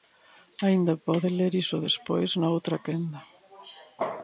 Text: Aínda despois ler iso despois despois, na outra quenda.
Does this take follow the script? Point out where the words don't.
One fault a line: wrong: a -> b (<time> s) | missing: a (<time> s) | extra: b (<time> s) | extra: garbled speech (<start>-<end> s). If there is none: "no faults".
wrong: despois -> pode (1.1 s)
missing: despois (2.3 s)